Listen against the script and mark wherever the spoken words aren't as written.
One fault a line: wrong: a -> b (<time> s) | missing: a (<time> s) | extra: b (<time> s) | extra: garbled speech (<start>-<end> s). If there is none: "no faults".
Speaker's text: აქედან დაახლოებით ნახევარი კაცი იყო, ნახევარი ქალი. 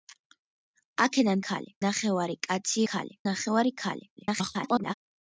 wrong: დაახლოებით -> ქალი (1.5 s)
wrong: იყო -> ქალი (2.9 s)
extra: garbled speech (4.2-4.9 s)